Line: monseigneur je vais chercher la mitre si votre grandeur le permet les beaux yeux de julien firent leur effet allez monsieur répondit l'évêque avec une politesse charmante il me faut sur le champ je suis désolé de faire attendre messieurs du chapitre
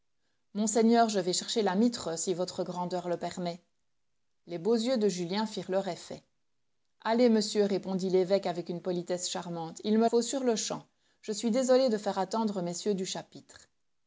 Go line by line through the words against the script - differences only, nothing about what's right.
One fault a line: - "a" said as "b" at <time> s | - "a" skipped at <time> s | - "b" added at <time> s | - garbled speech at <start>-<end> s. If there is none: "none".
none